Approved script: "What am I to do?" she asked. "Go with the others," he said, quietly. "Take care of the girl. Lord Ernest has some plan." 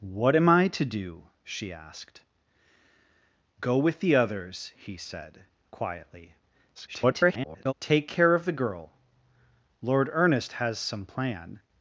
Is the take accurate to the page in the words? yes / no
no